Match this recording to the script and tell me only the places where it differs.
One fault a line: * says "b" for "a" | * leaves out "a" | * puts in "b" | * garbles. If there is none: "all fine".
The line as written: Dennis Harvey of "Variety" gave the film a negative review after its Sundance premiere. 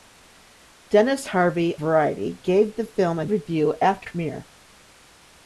* leaves out "of"
* leaves out "negative"
* leaves out "its Sundance"